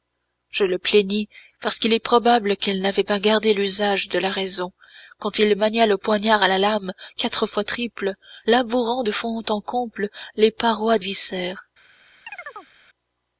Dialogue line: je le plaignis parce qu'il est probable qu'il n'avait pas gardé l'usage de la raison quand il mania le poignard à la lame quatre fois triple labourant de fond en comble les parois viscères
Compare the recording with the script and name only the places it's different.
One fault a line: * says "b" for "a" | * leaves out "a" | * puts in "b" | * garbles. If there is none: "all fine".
all fine